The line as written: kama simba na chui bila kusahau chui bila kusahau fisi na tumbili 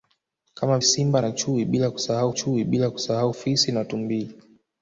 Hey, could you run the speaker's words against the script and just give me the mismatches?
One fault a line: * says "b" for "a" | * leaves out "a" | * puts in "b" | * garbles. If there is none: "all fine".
all fine